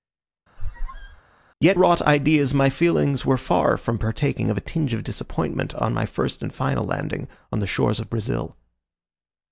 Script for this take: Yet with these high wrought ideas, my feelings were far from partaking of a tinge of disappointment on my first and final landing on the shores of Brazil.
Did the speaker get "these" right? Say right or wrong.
wrong